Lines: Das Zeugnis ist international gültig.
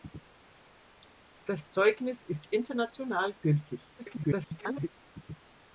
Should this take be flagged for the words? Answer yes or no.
yes